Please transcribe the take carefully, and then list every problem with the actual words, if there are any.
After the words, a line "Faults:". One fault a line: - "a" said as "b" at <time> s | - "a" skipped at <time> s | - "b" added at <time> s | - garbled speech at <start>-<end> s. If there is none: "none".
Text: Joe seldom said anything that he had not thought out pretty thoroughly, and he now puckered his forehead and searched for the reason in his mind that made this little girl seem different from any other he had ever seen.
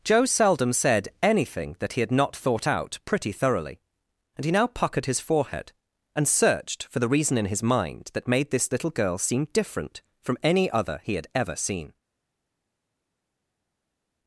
Joe seldom said anything that he had not thought out pretty thoroughly, and he now puckered his forehead and searched for the reason in his mind that made this little girl seem different from any other he had ever seen.
Faults:
none